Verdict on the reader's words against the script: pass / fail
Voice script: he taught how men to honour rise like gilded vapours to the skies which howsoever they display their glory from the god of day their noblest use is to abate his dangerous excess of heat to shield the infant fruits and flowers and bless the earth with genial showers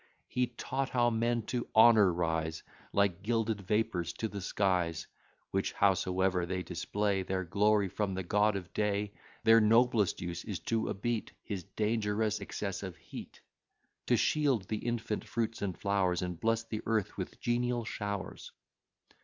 pass